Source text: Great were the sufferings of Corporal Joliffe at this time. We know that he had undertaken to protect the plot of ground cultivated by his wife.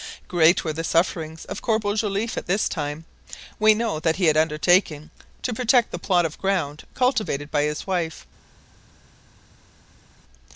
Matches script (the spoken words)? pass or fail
pass